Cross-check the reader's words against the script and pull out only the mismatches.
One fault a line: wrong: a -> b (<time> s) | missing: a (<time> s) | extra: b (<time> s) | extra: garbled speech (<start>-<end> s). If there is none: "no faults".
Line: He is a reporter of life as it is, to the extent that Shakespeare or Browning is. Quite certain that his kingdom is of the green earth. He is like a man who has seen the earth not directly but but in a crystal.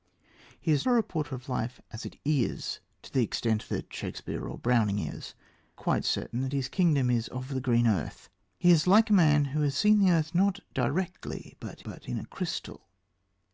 no faults